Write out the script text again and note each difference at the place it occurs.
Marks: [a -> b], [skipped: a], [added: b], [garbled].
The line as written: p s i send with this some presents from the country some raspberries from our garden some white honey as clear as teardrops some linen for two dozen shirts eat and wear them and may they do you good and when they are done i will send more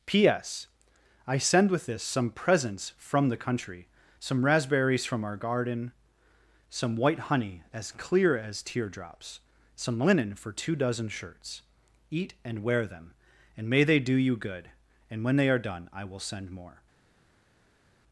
p s i send with this some presents from the country some raspberries from our garden some white honey as clear as teardrops some linen for two dozen shirts eat and wear them and may they do you good and when they are done i will send more